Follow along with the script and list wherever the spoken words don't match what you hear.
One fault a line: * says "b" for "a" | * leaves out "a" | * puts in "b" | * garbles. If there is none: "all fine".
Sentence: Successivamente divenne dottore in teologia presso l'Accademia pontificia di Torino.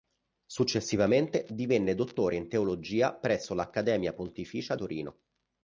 * leaves out "di"